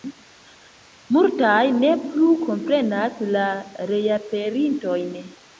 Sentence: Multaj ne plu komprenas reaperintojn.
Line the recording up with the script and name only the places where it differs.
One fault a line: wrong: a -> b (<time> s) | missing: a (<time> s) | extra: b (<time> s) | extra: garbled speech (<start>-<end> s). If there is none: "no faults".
extra: la (3.3 s)